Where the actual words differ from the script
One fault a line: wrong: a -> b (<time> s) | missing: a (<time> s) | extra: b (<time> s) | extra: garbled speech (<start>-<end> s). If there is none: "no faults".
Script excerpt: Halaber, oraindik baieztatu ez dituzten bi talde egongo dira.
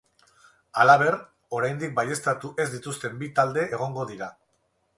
no faults